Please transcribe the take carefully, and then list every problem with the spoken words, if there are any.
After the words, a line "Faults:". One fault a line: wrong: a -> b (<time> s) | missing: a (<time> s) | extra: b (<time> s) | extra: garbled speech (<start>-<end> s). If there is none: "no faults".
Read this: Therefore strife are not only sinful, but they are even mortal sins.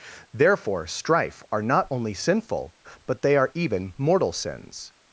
Therefore strife are not only sinful, but they are even mortal sins.
Faults:
no faults